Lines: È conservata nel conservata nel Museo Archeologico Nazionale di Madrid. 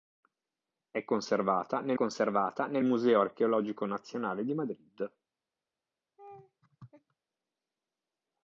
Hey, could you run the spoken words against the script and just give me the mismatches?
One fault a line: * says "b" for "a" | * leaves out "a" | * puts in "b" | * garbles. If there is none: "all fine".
all fine